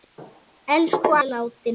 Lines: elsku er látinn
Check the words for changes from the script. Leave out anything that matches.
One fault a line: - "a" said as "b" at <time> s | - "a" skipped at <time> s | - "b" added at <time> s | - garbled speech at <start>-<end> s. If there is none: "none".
none